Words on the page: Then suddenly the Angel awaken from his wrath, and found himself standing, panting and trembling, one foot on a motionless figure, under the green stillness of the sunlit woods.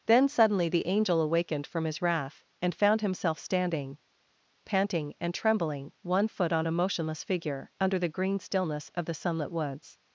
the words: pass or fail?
fail